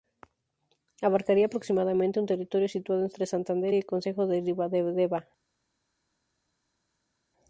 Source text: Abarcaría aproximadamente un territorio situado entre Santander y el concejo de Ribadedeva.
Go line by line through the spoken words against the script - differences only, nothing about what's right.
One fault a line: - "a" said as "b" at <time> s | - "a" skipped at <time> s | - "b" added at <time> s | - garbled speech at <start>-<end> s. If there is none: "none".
none